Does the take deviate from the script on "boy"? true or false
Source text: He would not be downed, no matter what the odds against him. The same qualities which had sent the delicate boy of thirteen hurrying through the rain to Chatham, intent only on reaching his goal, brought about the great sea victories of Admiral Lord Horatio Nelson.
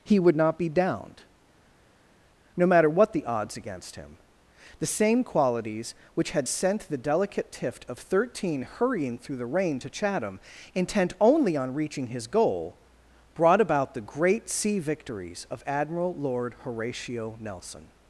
true